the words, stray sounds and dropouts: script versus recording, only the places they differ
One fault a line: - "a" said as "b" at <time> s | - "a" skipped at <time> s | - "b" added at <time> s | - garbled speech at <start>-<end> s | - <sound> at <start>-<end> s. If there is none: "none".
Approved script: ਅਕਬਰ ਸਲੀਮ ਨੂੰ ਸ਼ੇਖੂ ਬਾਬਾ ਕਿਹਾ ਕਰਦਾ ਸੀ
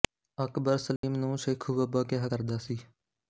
- dropout at 1.0-1.0 s